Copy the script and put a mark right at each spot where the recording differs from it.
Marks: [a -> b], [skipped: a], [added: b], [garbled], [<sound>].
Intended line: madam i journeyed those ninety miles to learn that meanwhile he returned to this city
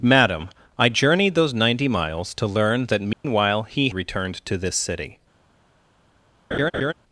madam i journeyed those ninety miles to learn that meanwhile [dropout] he returned to this city [laugh]